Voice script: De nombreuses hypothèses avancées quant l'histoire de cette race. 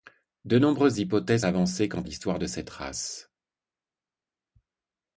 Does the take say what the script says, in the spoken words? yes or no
yes